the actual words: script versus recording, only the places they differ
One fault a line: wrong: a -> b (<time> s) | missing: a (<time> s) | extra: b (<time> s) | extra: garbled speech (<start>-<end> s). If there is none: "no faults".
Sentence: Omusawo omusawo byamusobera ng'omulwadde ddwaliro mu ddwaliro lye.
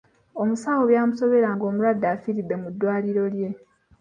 missing: omusawo (0.8 s)
wrong: ddwaliro -> afiiridde (2.1 s)